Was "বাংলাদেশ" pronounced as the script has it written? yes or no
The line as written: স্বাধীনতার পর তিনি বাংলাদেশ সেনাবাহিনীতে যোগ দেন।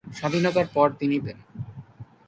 no